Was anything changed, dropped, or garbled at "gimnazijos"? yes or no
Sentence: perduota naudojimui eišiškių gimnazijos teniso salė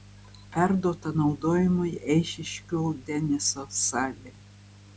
yes